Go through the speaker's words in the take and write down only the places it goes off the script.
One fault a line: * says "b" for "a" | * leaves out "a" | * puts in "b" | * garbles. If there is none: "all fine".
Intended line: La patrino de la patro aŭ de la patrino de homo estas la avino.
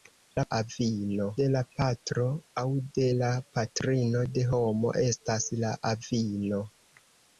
* says "avino" for "patrino"